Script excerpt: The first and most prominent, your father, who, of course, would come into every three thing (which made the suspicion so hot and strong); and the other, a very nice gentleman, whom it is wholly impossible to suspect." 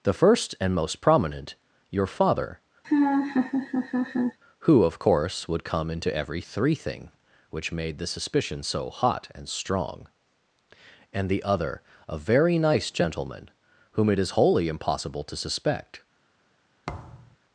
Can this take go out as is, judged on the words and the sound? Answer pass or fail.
fail